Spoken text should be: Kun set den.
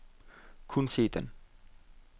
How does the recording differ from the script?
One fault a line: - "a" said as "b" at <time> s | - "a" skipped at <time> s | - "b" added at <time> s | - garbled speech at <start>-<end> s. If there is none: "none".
none